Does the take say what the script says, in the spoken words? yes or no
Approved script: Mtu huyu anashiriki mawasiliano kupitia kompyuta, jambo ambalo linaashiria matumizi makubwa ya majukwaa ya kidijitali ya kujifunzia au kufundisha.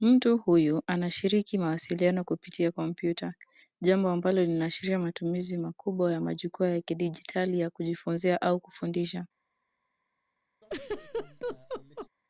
yes